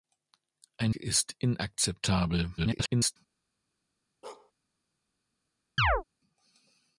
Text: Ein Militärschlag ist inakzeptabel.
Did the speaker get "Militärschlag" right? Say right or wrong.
wrong